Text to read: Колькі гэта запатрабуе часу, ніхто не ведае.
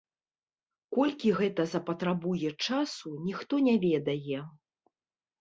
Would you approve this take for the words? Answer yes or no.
yes